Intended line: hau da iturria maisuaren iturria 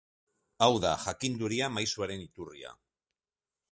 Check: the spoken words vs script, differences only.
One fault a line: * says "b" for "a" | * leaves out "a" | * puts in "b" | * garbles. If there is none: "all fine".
* says "jakinduria" for "iturria"